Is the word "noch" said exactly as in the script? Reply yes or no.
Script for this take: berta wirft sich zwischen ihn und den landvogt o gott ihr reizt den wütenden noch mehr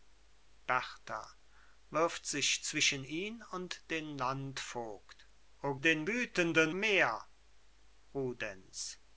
no